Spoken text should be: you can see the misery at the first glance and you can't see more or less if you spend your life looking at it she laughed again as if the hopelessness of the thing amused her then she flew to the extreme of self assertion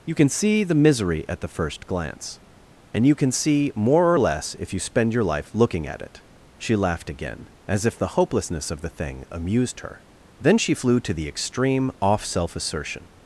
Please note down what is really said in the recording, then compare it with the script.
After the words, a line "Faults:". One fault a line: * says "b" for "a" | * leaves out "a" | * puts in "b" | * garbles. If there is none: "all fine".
you can see the misery at the first glance and you can see more or less if you spend your life looking at it she laughed again as if the hopelessness of the thing amused her then she flew to the extreme off self assertion
Faults:
* says "can" for "can't"
* says "off" for "of"